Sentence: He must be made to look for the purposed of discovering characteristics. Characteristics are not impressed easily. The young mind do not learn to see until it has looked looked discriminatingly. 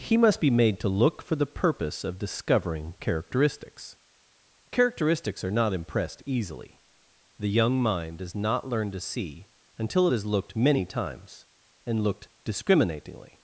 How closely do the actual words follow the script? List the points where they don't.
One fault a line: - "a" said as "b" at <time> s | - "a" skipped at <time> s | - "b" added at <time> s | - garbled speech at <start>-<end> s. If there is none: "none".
- "purposed" said as "purpose" at 1.4 s
- "do" said as "does" at 8.2 s
- "many times and" added at 10.6 s